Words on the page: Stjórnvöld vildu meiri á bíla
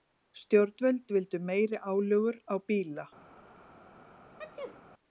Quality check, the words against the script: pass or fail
fail